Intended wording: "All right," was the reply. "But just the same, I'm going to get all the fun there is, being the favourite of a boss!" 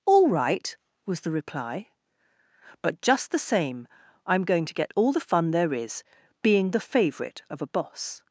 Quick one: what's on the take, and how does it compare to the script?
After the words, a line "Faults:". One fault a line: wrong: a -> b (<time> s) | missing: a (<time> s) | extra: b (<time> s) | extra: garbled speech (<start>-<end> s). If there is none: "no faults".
"All right," was the reply. "But just the same, I'm going to get all the fun there is, being the favourite of a boss!"
Faults:
no faults